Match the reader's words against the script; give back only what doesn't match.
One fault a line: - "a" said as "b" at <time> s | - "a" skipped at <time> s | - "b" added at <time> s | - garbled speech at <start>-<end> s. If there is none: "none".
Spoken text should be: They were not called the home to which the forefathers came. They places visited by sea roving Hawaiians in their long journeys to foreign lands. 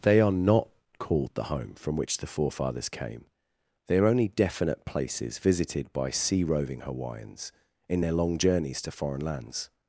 - "were" said as "are" at 0.2 s
- "to" said as "from" at 1.8 s
- "are only definite" added at 4.0 s